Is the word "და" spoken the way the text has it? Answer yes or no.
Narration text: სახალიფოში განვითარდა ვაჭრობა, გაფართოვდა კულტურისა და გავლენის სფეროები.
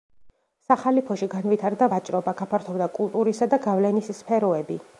yes